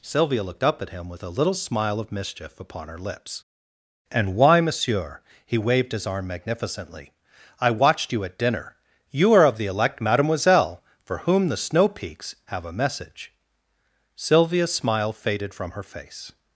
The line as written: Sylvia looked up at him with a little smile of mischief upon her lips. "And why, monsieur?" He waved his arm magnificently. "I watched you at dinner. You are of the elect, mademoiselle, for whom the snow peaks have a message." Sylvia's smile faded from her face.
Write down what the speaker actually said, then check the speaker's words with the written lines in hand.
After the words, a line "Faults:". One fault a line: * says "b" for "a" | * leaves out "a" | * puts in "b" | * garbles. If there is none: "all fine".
Sylvia looked up at him with a little smile of mischief upon her lips. "And why, monsieur?" He waved his arm magnificently. "I watched you at dinner. You are of the elect, mademoiselle, for whom the snow peaks have a message." Sylvia's smile faded from her face.
Faults:
all fine